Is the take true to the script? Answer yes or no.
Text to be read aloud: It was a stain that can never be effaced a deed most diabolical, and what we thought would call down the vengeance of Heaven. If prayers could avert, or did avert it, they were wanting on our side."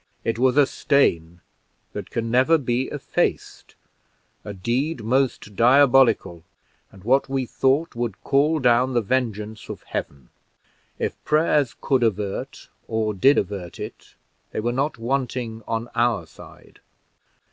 no